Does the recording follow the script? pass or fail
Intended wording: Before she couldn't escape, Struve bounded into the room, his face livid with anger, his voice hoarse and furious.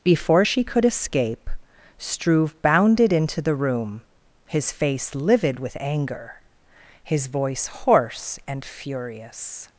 fail